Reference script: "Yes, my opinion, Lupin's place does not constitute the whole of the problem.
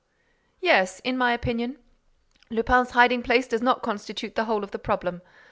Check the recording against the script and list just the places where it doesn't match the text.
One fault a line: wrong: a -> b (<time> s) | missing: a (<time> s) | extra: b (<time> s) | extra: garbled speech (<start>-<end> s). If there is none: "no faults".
extra: in (1.0 s)
extra: hiding (2.9 s)